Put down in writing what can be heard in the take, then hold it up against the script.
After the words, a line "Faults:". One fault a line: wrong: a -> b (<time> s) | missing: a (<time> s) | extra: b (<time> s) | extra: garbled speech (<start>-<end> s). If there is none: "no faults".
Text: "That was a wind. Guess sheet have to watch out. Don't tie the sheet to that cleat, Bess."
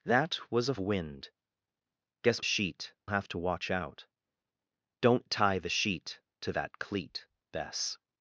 "That was a wind. Guess sheet have to watch out. Don't tie the sheet to that cleat, Bess."
Faults:
no faults